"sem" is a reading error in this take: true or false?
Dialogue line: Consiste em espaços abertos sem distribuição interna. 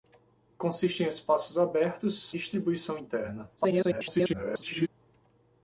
true